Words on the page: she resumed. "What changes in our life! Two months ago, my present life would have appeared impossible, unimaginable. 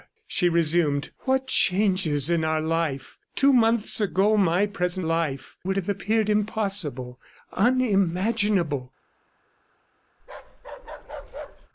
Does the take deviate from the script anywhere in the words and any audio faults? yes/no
yes